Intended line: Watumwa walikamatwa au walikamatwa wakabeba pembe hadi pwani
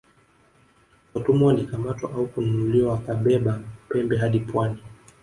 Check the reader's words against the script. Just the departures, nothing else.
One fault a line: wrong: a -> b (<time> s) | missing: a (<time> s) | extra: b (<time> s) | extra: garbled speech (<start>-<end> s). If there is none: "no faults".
wrong: walikamatwa -> kununuliwa (2.3 s)